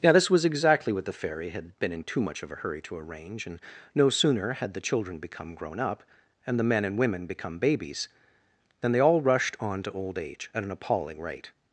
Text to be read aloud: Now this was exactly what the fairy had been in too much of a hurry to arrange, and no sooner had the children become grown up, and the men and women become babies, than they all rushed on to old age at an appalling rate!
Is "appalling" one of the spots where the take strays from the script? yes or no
no